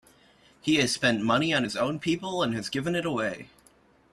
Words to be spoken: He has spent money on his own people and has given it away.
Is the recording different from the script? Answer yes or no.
no